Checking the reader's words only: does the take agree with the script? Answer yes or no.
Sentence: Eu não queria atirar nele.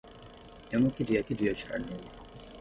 no